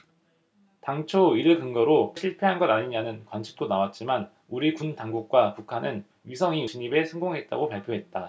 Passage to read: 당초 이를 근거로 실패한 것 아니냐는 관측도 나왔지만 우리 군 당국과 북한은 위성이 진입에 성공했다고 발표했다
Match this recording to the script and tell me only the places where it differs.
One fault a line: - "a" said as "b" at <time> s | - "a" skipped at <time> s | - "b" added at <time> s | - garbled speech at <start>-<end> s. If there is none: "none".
none